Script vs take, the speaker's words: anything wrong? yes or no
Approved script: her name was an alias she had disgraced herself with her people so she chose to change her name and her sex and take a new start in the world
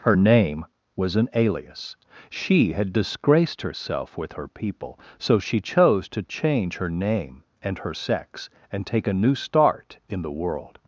no